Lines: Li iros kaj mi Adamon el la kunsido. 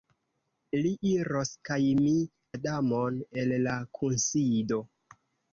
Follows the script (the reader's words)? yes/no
yes